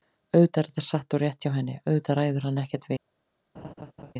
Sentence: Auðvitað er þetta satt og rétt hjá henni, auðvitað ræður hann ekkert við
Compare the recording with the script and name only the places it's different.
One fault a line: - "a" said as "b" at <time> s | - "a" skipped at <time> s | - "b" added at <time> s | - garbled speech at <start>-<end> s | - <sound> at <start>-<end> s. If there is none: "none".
- laugh at 3.5-4.1 s